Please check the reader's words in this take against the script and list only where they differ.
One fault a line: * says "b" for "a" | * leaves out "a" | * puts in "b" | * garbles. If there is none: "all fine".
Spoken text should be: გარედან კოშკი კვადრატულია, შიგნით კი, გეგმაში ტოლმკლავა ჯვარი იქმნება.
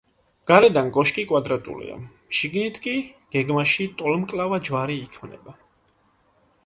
all fine